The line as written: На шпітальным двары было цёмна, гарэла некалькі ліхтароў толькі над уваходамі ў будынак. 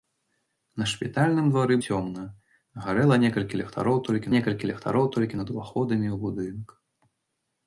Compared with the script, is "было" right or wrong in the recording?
wrong